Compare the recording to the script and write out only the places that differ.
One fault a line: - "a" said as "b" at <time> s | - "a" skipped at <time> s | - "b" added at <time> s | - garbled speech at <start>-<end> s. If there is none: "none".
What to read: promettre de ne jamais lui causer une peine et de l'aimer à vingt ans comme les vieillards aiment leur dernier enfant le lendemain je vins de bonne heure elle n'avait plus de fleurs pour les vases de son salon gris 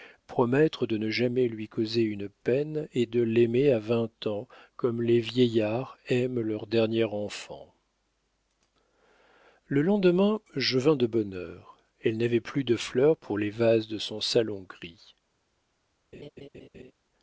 none